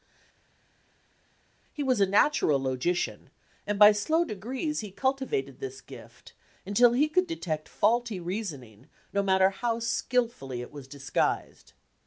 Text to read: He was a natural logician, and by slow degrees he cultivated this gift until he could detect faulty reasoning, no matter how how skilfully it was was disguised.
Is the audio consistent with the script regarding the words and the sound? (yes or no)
no